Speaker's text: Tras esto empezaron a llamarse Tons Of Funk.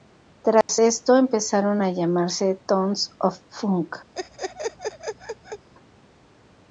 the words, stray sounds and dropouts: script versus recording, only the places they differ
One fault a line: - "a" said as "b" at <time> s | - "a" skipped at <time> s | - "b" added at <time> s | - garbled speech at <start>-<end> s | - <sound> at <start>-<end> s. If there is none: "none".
- dropout at 0.6-0.7 s
- laugh at 4.2-5.7 s